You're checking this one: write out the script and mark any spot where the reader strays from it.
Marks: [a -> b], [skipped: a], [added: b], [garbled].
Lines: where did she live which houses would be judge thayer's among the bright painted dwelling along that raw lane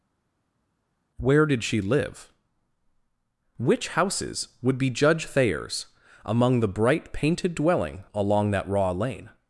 where did she live which houses would be judge thayer's among the bright painted dwelling along that raw lane